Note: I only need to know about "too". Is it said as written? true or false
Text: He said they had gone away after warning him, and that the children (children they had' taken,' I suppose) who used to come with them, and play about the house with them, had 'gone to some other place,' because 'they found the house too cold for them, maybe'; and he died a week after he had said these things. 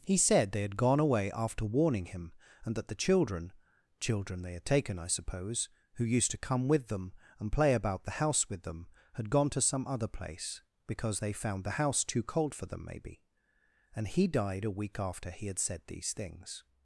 true